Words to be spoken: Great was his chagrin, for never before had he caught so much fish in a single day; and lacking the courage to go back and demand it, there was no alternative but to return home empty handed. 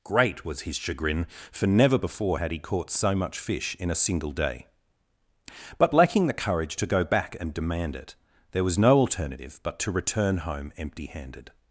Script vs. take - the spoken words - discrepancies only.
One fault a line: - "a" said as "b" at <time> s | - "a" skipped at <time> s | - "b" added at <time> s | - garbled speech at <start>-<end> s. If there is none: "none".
- "and" said as "but" at 5.8 s